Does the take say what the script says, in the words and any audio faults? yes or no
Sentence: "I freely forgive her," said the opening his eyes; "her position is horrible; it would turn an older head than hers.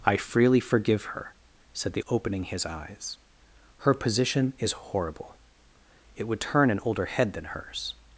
yes